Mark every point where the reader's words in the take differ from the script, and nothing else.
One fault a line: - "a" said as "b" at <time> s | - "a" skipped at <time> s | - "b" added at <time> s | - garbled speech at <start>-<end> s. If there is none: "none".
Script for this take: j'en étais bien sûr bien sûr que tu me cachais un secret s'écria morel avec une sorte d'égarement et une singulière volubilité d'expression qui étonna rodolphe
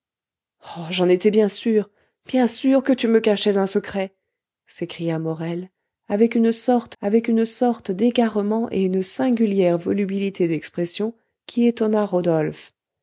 - "avec une sorte" added at 7.0 s